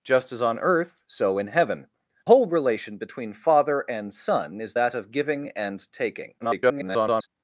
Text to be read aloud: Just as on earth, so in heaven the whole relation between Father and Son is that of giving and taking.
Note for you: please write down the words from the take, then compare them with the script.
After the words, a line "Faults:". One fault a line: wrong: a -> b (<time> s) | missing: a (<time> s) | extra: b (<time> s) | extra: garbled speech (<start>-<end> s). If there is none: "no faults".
Just as on earth, so in heaven whole relation between Father and Son is that of giving and taking. [garbled]
Faults:
missing: the (1.9 s)
extra: garbled speech (6.4-7.3 s)